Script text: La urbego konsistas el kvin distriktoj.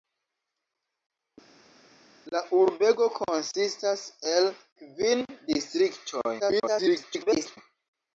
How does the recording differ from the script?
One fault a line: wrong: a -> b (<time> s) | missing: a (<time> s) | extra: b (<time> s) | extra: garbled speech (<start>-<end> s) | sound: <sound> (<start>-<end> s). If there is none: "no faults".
extra: garbled speech (6.4-7.6 s)